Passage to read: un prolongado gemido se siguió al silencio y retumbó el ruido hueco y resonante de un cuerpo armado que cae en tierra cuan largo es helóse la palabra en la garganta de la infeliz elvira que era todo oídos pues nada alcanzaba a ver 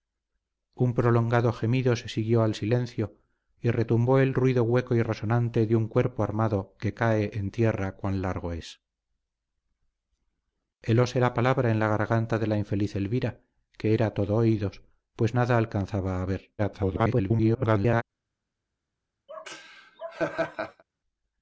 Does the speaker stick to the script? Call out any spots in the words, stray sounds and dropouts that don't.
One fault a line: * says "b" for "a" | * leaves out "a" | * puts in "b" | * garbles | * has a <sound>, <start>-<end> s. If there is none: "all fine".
* garbles
* has a laugh, 19.3-20.8 s